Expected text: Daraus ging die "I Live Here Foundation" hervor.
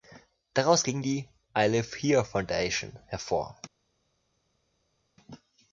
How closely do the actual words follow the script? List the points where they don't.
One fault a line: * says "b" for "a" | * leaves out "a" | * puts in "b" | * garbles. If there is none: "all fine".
all fine